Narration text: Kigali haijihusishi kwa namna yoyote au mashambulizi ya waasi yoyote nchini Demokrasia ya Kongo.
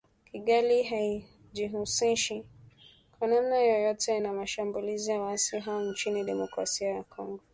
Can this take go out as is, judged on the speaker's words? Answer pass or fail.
fail